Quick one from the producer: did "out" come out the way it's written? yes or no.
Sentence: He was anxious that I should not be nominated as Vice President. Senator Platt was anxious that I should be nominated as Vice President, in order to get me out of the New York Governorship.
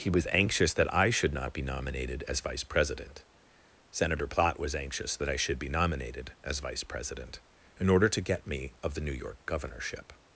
no